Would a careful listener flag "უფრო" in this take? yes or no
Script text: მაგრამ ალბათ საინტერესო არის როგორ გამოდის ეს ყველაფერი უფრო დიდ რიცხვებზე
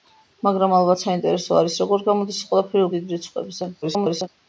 yes